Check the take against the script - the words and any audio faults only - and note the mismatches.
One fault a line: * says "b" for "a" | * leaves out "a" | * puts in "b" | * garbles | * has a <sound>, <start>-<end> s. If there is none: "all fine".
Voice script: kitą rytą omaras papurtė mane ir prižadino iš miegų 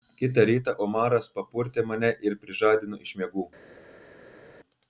all fine